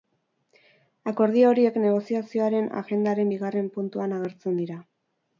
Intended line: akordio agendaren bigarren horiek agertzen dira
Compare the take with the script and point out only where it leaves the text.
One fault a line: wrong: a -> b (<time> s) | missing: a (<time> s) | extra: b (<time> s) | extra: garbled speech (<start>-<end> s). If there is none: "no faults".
extra: horiek negoziazioaren (1.5 s)
wrong: horiek -> puntuan (3.8 s)